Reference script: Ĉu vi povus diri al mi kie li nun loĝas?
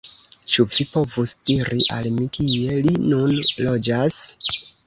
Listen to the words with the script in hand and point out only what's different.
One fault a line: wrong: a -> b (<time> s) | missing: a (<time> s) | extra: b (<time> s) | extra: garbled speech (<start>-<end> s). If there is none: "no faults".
no faults